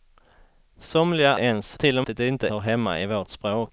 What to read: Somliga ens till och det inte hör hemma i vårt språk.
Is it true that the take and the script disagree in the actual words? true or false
false